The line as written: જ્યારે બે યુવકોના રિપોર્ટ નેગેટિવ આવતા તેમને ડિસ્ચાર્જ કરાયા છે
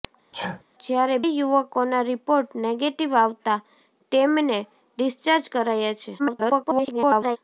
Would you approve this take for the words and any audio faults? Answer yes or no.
no